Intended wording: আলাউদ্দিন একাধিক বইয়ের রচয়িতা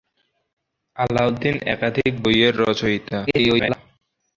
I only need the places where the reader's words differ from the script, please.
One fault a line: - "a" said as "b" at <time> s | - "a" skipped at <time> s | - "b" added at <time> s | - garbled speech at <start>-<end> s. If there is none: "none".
- garbled speech at 3.3-3.8 s